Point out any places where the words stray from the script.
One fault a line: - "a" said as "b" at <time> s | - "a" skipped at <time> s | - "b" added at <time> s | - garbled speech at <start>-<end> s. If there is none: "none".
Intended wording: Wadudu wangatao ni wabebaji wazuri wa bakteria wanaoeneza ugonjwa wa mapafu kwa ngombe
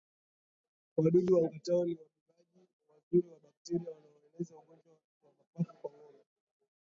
none